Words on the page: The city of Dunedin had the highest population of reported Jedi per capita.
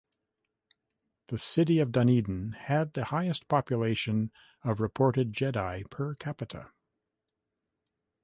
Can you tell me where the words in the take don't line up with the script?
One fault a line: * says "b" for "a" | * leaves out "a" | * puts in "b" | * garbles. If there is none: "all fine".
all fine